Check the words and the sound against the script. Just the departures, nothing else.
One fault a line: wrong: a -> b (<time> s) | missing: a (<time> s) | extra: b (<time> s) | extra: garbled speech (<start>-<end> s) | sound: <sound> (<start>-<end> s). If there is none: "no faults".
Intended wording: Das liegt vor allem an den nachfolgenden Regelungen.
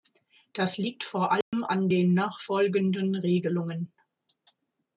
sound: dropout (1.4-1.5 s)